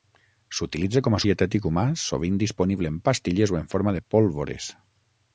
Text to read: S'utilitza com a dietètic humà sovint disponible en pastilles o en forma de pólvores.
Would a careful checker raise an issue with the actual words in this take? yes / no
no